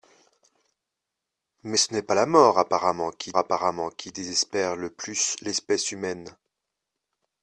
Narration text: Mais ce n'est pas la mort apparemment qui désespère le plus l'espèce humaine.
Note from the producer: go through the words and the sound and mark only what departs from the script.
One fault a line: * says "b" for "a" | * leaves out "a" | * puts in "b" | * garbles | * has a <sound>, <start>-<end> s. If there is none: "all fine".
* puts in "apparemment qui"